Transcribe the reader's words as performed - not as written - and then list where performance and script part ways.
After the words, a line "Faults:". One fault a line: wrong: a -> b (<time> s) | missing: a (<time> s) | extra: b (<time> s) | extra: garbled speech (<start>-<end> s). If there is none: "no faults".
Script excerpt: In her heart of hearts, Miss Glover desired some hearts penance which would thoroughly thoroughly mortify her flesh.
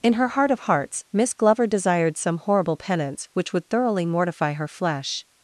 In her heart of hearts, Miss Glover desired some horrible penance which would thoroughly mortify her flesh.
Faults:
wrong: hearts -> horrible (2.4 s)
missing: thoroughly (4.1 s)